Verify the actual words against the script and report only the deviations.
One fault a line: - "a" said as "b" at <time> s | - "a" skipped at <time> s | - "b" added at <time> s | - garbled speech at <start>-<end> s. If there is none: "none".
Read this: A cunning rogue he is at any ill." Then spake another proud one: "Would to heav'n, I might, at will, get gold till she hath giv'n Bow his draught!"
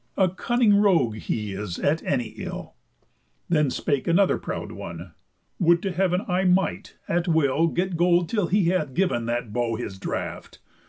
- "she" said as "he" at 8.5 s
- "That" added at 9.2 s